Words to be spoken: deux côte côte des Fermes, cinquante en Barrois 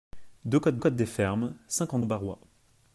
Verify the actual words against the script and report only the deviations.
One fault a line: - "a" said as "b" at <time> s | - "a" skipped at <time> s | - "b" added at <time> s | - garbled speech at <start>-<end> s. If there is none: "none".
none